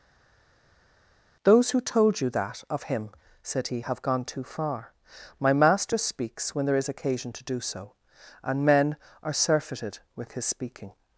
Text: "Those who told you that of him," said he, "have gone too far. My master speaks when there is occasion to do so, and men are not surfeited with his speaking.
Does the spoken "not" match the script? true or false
false